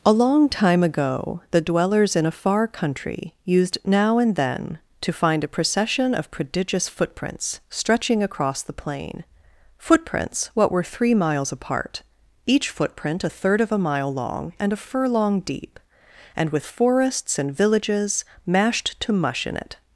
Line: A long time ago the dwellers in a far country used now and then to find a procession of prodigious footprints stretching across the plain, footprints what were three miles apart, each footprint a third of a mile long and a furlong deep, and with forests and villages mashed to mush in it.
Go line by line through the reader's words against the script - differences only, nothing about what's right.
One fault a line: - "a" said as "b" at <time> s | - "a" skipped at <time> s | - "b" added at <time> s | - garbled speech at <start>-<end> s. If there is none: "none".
none